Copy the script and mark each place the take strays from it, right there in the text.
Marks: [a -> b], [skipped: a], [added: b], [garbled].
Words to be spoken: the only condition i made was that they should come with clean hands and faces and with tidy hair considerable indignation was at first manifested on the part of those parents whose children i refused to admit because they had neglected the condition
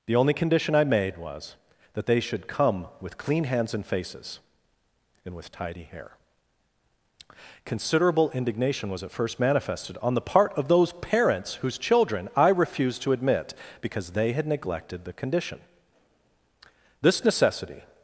the only condition i made was that they should come with clean hands and faces and with tidy hair considerable indignation was at first manifested on the part of those parents whose children i refused to admit because they had neglected the condition [added: this necessity]